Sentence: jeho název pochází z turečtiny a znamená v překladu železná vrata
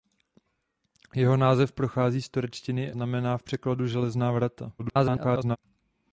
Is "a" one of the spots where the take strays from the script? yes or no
yes